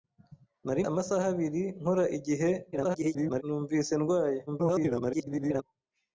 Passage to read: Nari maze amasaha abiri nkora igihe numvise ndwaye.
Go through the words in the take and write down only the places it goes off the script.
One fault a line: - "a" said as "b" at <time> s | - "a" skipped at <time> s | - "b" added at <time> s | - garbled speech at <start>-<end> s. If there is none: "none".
- "maze" skipped at 0.8 s
- garbled speech at 2.7-3.4 s
- garbled speech at 4.5-5.6 s